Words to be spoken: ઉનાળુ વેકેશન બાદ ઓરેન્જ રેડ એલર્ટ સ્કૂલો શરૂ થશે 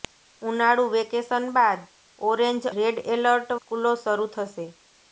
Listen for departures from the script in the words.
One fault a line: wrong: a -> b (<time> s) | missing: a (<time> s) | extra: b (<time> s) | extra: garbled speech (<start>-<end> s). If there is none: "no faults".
no faults